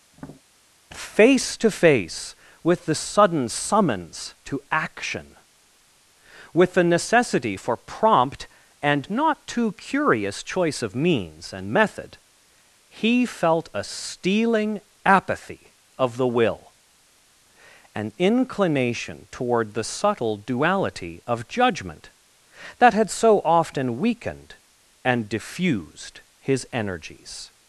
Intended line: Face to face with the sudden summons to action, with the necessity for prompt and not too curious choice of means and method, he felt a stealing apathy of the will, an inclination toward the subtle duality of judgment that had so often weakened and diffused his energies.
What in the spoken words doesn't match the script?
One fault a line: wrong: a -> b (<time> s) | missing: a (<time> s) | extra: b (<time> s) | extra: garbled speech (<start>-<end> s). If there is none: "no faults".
no faults